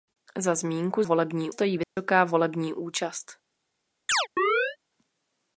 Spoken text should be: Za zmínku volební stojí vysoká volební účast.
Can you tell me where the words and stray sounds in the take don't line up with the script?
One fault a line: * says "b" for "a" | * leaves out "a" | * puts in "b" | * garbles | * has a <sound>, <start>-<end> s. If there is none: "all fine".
* has a dropout, 1.8-2.0 s
* has a chirp, 4.1-4.8 s